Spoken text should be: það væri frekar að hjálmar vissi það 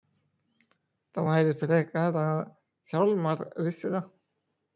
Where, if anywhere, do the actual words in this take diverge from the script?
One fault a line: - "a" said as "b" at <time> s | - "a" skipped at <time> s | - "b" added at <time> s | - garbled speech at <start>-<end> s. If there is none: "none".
none